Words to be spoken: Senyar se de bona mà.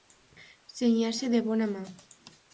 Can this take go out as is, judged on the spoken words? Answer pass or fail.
pass